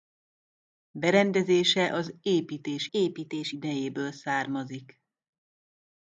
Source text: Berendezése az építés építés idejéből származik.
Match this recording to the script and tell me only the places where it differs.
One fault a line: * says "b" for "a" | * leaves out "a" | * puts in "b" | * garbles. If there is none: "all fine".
all fine